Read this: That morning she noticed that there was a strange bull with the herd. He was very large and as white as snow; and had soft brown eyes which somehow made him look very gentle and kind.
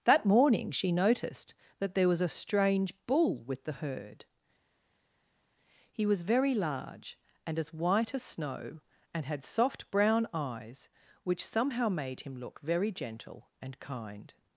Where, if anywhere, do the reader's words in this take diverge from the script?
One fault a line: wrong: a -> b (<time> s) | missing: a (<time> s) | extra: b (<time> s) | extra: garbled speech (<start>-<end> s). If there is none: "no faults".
no faults